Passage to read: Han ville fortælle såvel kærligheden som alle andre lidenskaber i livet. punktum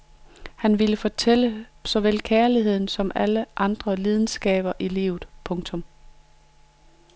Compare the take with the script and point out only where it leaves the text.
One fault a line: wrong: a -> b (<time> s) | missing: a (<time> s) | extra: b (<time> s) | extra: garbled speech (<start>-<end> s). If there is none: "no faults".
no faults